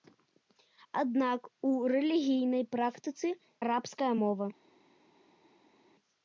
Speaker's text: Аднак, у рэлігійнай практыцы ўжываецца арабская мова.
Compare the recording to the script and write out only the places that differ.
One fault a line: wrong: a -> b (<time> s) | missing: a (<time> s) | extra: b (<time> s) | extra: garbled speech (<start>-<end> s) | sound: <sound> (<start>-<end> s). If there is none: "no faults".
missing: ўжываецца (3.3 s)